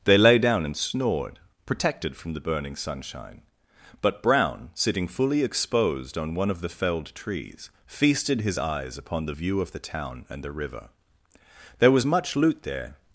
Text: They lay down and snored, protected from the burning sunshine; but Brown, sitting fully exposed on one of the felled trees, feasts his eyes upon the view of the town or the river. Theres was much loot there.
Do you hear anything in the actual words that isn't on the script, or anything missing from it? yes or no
yes